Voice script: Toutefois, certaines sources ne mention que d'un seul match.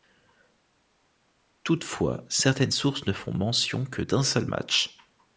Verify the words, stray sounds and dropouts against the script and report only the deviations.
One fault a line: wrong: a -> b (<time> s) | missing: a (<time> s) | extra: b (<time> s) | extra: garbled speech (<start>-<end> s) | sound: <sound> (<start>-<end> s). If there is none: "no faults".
extra: font (3.1 s)